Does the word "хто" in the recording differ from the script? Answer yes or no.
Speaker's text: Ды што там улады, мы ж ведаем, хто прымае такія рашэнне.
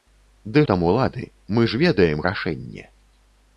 yes